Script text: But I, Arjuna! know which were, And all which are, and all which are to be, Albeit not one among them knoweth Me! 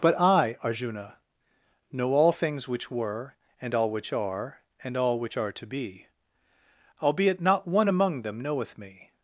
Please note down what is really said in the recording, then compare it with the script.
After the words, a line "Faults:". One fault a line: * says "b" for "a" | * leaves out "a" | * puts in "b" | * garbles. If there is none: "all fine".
But I, Arjuna! know all things which were, And all which are, and all which are to be, Albeit not one among them knoweth Me!
Faults:
* puts in "all things"